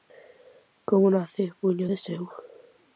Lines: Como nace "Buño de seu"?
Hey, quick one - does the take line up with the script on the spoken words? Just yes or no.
yes